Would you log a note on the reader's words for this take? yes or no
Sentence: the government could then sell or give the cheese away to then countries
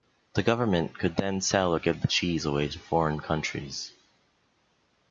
yes